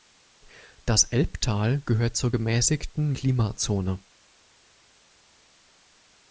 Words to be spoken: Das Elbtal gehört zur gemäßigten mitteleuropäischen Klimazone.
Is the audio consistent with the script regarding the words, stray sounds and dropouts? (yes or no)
no